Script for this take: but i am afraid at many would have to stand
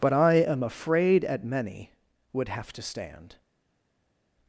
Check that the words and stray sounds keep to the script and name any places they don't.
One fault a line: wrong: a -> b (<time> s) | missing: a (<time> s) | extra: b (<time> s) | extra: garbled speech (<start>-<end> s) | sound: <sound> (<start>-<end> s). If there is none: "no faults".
no faults